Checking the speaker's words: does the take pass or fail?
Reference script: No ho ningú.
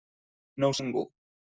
pass